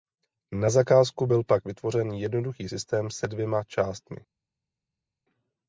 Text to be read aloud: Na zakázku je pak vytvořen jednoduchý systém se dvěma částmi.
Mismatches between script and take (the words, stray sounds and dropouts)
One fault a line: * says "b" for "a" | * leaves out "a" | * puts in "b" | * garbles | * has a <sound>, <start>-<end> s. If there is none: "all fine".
* says "byl" for "je"